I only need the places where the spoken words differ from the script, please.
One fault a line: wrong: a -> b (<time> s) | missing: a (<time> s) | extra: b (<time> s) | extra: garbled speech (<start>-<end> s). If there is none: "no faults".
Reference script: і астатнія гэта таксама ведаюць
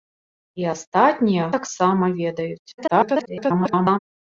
missing: гэта (1.5 s)
extra: garbled speech (2.8-4.0 s)